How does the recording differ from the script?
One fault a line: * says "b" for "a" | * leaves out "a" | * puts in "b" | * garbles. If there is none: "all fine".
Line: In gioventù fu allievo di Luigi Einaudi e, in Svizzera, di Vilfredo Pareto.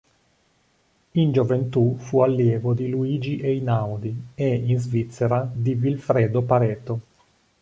all fine